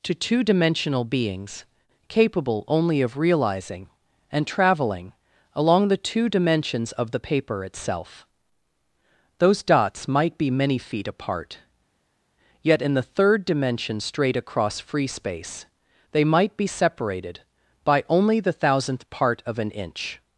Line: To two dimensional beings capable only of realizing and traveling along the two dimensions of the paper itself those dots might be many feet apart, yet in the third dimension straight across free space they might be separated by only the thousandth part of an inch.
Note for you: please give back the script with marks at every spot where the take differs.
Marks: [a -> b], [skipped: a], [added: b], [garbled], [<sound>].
To two dimensional beings capable only of realizing and traveling along the two dimensions of the paper itself those dots might be many feet apart, yet in the third dimension straight across free space they might be separated by only the thousandth part of an inch.